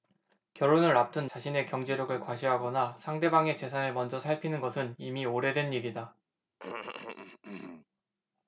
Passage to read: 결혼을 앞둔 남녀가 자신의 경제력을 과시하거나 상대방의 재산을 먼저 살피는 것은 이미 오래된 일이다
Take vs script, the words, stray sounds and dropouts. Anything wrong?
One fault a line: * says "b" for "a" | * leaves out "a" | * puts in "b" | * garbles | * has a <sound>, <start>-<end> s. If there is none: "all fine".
* leaves out "남녀가"
* has a cough, 6.6-7.9 s